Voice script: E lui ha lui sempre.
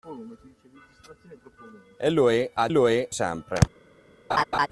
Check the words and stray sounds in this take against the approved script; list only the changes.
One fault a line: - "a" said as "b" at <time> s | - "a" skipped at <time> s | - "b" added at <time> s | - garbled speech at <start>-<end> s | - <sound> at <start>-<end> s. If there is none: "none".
- laugh at 4.3-4.7 s